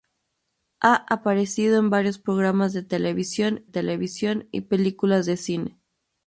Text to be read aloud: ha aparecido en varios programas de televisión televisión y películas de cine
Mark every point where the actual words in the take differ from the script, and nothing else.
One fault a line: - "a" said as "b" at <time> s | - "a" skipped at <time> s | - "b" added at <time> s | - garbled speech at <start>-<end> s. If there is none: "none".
none